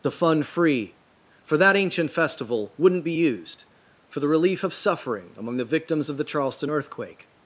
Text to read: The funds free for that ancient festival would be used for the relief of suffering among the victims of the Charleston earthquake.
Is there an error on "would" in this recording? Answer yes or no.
yes